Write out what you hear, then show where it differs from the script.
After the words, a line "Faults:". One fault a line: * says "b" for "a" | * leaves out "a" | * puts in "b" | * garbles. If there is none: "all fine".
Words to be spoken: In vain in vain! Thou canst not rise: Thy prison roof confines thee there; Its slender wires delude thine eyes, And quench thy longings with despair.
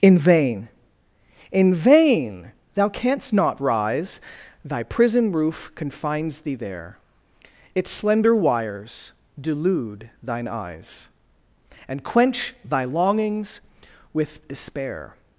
In vain in vain! Thou canst not rise: Thy prison roof confines thee there; Its slender wires delude thine eyes, And quench thy longings with despair.
Faults:
all fine